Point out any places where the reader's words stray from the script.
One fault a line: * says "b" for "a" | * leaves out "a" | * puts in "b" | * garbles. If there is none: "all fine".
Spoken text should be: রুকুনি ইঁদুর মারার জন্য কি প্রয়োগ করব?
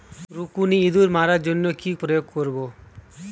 all fine